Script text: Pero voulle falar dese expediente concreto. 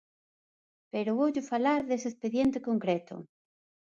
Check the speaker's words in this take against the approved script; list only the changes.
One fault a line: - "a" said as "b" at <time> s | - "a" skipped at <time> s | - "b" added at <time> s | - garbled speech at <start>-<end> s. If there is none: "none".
none